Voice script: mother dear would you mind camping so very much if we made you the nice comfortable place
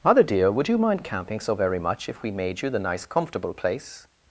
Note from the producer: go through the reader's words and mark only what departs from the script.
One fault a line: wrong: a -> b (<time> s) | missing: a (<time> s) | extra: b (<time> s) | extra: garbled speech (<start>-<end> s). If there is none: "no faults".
no faults